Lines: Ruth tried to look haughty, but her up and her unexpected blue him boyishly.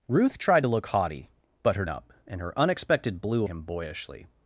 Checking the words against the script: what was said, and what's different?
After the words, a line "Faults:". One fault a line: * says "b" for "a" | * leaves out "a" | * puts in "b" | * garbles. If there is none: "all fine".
Ruth tried to look haughty, but her up and her unexpected blue him boyishly.
Faults:
all fine